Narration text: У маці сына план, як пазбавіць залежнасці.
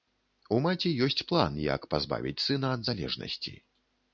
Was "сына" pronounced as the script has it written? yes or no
no